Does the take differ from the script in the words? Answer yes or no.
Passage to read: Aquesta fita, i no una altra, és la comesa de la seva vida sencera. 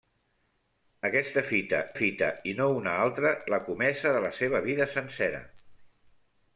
yes